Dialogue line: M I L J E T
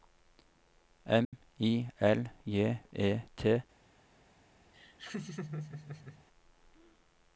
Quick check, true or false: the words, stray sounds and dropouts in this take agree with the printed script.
false